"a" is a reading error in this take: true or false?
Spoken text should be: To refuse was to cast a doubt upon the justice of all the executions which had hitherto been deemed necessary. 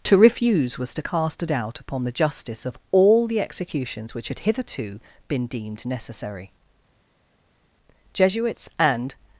false